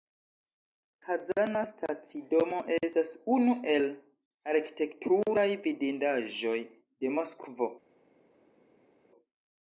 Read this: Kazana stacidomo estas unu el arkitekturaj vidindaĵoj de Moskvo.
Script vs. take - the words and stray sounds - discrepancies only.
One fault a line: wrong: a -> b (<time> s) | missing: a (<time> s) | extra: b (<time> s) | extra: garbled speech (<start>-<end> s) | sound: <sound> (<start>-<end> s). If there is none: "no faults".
no faults